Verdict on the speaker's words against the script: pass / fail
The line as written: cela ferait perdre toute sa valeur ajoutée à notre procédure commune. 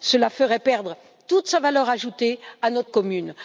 fail